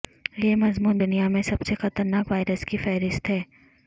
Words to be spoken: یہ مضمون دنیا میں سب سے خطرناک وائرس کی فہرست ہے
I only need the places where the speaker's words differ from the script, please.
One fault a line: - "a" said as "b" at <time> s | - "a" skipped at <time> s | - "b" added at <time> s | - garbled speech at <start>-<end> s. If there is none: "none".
none